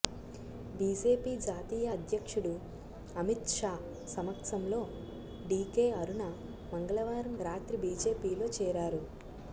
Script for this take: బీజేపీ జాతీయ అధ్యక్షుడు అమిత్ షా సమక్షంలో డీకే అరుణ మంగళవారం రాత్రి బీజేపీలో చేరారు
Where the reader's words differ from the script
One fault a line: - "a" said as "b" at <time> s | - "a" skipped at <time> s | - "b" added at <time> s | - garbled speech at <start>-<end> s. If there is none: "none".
none